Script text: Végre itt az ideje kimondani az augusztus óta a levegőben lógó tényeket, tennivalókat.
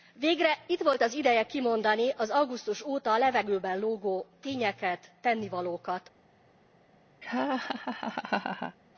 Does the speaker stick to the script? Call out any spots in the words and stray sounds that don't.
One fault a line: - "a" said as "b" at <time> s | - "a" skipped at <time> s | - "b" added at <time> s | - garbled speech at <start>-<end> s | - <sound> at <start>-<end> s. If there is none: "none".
- "volt" added at 0.8 s
- laugh at 7.2-8.8 s